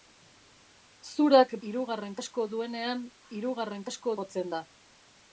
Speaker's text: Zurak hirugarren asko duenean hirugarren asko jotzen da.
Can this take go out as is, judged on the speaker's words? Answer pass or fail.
pass